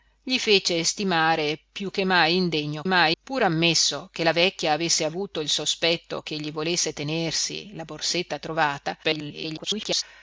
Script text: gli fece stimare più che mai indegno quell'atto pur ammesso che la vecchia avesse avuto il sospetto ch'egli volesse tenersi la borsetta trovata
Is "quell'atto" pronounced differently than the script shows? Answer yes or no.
yes